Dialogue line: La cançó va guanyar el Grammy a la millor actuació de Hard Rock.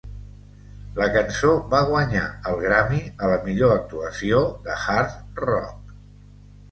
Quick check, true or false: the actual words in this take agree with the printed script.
true